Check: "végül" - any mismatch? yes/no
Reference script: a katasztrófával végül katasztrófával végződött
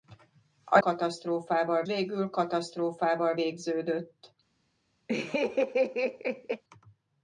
no